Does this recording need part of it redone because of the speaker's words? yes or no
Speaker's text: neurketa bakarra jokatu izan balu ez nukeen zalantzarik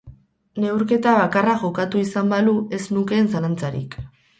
no